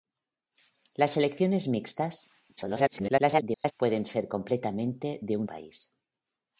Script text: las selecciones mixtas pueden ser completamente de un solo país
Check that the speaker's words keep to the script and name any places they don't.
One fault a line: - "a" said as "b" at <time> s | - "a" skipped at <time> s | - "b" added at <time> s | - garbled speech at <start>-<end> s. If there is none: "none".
- garbled speech at 2.6-3.7 s
- "solo" skipped at 5.5 s